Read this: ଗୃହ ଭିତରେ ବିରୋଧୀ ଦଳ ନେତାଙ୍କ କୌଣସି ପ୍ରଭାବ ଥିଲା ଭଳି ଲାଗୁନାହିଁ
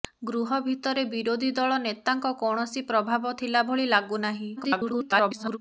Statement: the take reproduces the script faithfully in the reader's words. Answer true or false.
false